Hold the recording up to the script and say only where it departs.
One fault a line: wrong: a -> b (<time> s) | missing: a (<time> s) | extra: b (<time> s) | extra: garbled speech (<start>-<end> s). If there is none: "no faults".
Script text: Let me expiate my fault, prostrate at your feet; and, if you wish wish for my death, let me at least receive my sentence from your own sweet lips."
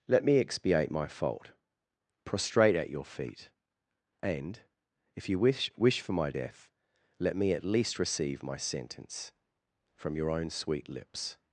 no faults